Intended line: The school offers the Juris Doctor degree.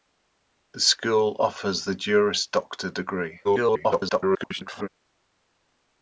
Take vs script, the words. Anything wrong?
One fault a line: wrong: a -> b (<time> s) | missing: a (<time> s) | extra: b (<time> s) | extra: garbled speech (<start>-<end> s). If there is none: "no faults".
extra: garbled speech (3.4-4.9 s)